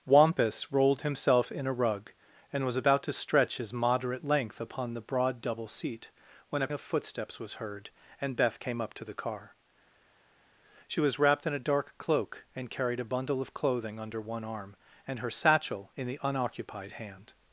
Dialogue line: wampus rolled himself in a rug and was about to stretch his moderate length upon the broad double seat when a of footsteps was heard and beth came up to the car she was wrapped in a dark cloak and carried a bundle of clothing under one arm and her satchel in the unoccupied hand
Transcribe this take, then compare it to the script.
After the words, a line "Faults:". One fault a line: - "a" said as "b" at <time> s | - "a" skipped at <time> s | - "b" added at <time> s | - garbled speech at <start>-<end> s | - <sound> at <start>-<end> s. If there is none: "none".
wampus rolled himself in a rug and was about to stretch his moderate length upon the broad double seat when a of footsteps was heard and beth came up to the car she was wrapped in a dark cloak and carried a bundle of clothing under one arm and her satchel in the unoccupied hand
Faults:
none